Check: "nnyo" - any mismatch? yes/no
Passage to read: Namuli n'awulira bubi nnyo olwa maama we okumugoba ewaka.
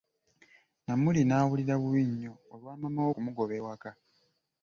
no